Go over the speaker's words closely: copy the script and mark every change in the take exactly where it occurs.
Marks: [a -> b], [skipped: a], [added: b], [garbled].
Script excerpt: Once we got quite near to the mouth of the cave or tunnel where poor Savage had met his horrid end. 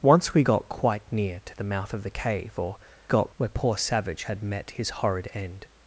Once we got quite near to the mouth of the cave or [tunnel -> got] where poor Savage had met his horrid end.